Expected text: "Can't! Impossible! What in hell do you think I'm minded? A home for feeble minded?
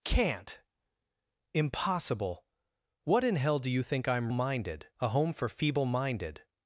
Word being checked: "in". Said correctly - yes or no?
yes